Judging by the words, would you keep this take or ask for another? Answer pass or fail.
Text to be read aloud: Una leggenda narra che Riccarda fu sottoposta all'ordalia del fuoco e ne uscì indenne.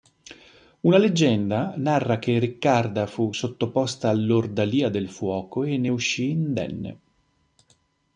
pass